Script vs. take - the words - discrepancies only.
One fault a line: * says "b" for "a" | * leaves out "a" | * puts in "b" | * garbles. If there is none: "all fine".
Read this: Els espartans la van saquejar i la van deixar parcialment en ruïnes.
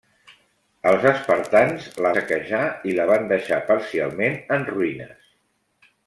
* leaves out "van"